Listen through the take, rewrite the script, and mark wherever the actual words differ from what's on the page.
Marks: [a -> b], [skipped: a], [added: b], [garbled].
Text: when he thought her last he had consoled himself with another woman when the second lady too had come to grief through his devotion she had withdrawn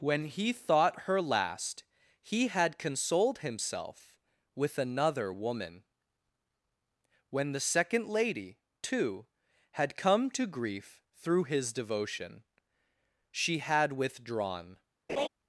when he thought her last he had consoled himself with another woman when the second lady too had come to grief through his devotion she had withdrawn